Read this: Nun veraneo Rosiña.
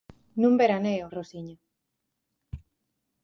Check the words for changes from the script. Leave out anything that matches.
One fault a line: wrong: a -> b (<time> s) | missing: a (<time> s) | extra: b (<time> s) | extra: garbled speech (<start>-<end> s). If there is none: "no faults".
no faults